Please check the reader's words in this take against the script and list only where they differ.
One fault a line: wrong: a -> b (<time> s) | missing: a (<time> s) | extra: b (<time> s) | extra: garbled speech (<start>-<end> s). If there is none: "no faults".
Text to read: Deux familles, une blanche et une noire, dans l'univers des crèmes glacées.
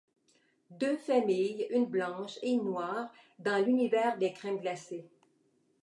no faults